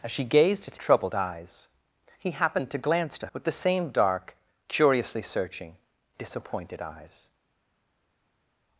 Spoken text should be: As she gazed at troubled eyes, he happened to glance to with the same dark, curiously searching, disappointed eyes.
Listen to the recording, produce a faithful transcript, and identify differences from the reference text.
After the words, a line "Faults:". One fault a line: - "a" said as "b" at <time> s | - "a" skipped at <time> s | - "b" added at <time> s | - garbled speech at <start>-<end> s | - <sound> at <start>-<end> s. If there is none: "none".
As she gazed at troubled eyes, he happened to glance to with the same dark, curiously searching, disappointed eyes.
Faults:
none